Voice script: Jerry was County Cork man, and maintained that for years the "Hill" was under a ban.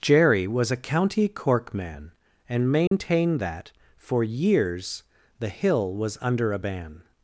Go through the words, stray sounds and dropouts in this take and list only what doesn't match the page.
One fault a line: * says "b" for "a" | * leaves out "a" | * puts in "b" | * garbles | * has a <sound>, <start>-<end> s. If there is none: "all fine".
* puts in "a"
* has a dropout, 2.9-2.9 s